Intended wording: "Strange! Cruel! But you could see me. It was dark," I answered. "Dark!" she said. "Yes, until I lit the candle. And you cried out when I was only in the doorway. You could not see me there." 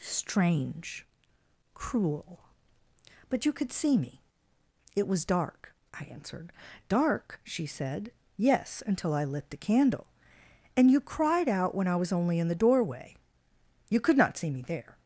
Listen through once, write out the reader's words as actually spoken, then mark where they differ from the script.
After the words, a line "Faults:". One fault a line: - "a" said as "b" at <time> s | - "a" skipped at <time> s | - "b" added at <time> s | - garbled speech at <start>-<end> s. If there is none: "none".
"Strange! Cruel! But you could see me. It was dark," I answered. "Dark!" she said. "Yes, until I lit the candle. And you cried out when I was only in the doorway. You could not see me there."
Faults:
none